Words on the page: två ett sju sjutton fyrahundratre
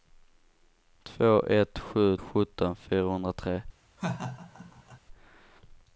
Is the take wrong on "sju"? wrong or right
right